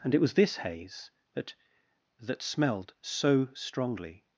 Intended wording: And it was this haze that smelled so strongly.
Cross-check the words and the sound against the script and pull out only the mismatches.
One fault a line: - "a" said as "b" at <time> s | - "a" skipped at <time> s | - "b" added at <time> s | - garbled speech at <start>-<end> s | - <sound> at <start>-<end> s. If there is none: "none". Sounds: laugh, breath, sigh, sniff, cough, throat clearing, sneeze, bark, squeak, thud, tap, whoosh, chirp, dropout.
- "that" added at 2.2 s